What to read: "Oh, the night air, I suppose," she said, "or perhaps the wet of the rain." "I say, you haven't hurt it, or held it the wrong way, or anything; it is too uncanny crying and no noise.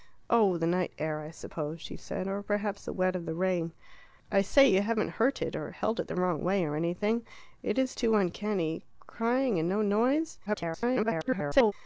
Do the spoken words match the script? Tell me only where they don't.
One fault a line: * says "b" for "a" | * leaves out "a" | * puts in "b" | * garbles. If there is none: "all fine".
* garbles